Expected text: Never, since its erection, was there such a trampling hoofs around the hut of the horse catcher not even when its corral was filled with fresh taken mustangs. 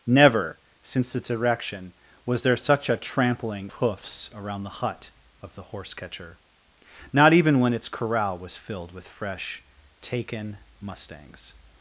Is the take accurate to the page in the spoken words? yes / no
yes